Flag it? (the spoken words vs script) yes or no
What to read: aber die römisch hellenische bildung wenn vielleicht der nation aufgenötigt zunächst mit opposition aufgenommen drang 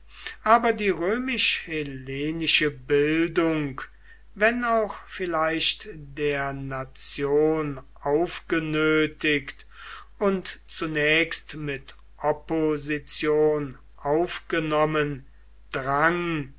yes